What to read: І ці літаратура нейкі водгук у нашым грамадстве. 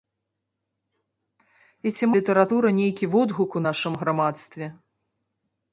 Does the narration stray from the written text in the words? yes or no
no